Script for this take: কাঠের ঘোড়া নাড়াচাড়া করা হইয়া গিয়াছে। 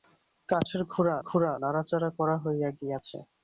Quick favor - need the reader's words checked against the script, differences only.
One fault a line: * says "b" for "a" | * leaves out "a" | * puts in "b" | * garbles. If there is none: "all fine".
* puts in "ঘোড়া"